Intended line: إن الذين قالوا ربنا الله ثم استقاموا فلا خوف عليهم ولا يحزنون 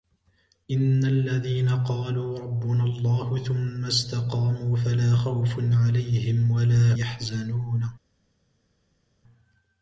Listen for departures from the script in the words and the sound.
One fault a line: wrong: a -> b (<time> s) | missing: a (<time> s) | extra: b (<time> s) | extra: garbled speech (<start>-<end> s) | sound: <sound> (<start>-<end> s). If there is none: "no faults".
no faults